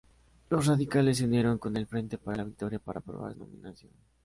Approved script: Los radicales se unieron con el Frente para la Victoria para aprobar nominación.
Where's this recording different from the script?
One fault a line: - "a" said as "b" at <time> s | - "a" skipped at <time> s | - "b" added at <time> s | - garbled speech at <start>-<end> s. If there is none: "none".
none